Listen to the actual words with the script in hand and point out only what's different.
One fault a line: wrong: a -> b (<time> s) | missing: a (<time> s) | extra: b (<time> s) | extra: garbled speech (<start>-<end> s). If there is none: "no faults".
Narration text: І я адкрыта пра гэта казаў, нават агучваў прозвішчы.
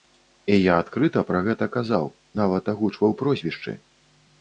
no faults